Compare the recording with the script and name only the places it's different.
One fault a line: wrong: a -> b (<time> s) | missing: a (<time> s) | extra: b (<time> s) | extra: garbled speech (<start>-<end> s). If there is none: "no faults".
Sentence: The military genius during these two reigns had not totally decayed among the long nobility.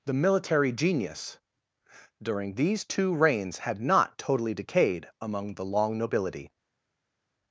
no faults